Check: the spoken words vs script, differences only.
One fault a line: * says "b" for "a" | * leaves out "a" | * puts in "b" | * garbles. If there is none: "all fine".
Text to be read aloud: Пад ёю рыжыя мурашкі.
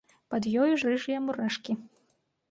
all fine